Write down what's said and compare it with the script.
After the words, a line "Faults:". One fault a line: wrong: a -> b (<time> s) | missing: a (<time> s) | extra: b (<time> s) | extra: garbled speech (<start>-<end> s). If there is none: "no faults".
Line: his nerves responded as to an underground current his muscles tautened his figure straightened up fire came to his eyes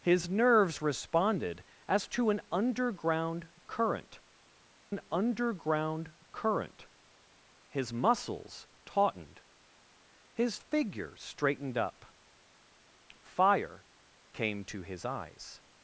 his nerves responded as to an underground current an underground current his muscles tautened his figure straightened up fire came to his eyes
Faults:
extra: an underground current (4.9 s)